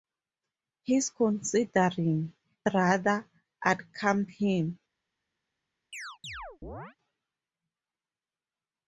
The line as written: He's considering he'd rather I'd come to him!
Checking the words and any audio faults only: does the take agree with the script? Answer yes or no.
no